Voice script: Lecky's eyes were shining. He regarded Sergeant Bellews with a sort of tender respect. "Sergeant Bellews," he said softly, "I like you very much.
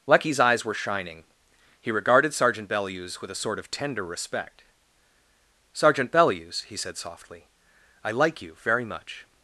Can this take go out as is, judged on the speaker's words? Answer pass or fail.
pass